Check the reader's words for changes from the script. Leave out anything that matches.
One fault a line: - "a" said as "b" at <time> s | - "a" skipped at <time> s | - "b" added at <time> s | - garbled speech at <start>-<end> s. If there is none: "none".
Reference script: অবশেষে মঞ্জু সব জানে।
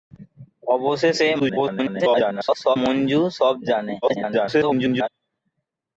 - garbled speech at 1.4-2.8 s
- garbled speech at 4.0-5.1 s